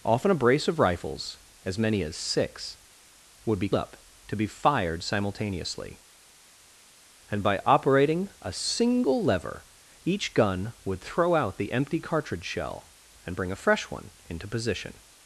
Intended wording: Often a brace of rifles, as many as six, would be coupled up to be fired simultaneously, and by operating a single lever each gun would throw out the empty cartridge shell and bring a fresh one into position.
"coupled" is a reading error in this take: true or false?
true